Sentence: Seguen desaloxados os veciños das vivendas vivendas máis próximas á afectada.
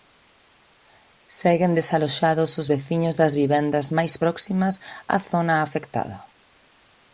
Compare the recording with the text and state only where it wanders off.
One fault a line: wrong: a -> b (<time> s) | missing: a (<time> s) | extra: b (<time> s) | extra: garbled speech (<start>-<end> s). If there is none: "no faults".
missing: vivendas (3.9 s)
extra: zona (5.3 s)